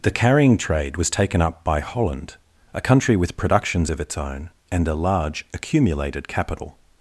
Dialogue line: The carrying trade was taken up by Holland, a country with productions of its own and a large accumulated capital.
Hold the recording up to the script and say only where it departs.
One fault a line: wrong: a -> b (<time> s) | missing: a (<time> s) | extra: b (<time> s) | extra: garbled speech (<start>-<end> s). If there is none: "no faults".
no faults